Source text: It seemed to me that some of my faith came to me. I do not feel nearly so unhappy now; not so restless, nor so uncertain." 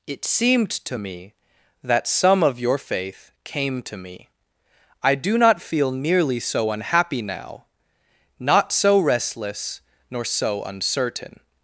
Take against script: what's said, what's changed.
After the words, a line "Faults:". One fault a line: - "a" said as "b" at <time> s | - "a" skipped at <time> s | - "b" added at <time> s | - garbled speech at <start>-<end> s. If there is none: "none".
It seemed to me that some of your faith came to me. I do not feel nearly so unhappy now; not so restless, nor so uncertain."
Faults:
- "my" said as "your" at 2.6 s